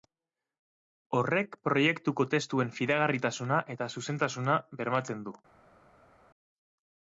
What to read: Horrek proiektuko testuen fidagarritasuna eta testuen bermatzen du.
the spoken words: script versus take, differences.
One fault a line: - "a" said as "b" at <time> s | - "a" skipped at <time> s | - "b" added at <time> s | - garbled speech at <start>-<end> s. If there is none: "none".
- "testuen" said as "zuzentasuna" at 4.0 s